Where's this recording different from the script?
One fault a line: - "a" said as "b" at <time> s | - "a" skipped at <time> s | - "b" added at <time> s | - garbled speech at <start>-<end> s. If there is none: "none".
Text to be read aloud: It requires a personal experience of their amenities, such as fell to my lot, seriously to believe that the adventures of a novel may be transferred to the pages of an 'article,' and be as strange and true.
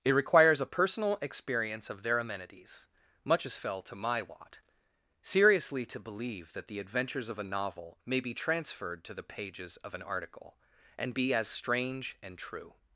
- "such" said as "much" at 3.2 s